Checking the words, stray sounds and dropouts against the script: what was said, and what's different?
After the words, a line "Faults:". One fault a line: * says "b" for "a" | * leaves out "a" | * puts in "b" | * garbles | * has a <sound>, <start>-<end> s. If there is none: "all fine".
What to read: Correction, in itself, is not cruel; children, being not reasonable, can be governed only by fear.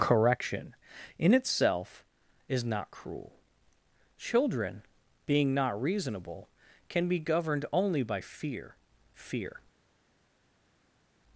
Correction, in itself, is not cruel; children, being not reasonable, can be governed only by fear fear.
Faults:
* puts in "fear"